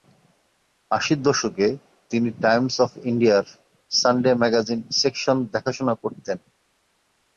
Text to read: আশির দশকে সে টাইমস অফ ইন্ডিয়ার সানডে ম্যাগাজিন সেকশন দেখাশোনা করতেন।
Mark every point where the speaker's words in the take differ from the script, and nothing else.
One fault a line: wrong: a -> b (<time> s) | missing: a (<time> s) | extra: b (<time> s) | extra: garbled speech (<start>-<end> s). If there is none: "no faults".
wrong: সে -> তিনি (2.1 s)